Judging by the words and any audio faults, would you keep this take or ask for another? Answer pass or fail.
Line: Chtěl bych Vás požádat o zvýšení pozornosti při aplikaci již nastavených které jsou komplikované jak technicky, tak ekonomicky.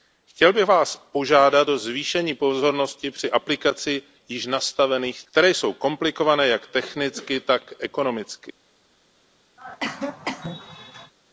fail